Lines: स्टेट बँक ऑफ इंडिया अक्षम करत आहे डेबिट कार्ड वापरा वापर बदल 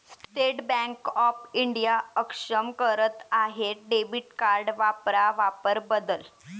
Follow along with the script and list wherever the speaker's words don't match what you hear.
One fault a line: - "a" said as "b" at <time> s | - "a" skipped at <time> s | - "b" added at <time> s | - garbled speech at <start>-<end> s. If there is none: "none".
none